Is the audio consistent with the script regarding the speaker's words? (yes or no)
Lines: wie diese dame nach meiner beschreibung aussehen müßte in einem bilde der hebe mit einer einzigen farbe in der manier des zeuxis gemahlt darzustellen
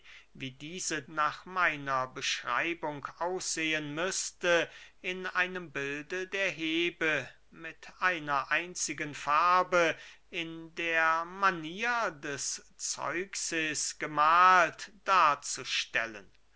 no